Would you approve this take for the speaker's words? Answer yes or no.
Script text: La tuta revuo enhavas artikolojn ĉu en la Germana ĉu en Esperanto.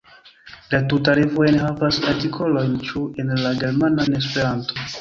no